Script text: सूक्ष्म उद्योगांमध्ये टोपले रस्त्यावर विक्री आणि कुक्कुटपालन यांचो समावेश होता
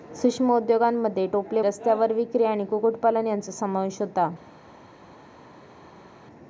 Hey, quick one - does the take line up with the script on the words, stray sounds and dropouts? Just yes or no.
yes